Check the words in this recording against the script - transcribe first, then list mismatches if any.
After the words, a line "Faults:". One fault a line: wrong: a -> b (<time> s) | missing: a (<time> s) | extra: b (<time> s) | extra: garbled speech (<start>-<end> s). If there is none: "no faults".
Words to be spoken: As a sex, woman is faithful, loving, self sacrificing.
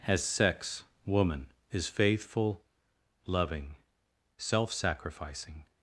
As sex, woman is faithful, loving, self sacrificing.
Faults:
missing: a (0.2 s)